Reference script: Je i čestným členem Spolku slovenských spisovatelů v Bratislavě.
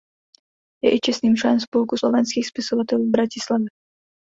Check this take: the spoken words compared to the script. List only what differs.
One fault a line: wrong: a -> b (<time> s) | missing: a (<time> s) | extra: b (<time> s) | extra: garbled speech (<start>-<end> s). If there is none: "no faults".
no faults